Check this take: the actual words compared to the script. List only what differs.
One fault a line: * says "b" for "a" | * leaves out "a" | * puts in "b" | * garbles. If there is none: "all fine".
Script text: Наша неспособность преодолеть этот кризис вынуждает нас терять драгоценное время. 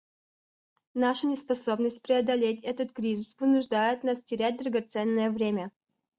all fine